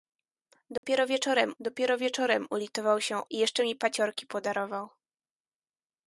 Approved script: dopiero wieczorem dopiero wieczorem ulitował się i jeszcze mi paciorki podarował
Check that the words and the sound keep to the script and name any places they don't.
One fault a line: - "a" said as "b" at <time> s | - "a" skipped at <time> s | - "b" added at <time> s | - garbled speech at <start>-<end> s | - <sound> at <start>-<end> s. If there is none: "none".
- dropout at 0.8-0.8 s